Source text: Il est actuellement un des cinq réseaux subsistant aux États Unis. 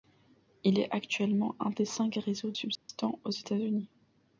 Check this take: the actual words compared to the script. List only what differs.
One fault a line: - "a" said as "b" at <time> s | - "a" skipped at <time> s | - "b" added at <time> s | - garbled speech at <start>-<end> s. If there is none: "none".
none